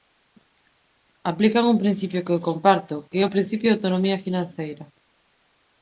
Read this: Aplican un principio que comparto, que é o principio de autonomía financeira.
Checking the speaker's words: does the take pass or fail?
fail